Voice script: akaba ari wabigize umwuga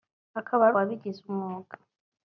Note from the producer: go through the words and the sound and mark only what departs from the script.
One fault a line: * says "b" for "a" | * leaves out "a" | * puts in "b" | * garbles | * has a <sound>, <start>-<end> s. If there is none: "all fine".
all fine